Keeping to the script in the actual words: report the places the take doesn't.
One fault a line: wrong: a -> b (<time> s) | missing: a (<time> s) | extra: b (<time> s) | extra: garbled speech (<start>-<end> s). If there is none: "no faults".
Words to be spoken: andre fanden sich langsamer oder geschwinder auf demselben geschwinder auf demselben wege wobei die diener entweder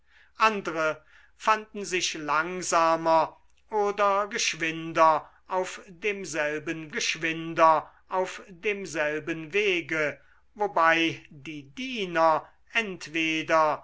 no faults